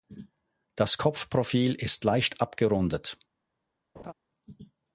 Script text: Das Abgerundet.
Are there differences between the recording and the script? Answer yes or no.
yes